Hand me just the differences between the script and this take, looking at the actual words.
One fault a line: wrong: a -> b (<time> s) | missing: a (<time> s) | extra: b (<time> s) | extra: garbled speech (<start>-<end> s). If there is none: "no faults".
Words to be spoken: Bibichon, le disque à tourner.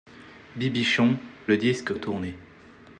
no faults